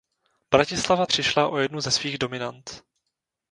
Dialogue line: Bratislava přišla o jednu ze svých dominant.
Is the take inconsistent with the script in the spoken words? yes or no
no